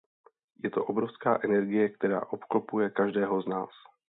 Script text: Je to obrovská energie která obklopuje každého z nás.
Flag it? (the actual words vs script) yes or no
no